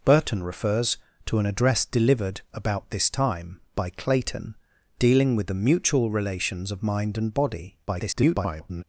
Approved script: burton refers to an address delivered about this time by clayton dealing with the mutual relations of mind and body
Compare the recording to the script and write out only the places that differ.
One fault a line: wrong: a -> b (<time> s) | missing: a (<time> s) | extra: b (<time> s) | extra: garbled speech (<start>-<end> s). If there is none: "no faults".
extra: garbled speech (7.9-8.8 s)